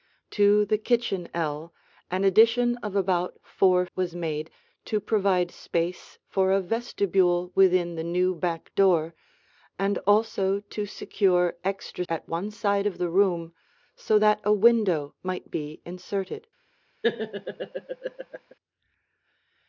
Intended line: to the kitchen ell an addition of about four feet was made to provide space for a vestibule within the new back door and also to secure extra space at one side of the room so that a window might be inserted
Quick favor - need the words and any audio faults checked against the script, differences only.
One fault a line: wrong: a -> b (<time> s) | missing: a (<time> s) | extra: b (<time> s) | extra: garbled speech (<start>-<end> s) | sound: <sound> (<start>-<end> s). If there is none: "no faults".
missing: feet (3.9 s)
missing: space (12.0 s)
sound: laugh (17.0-18.5 s)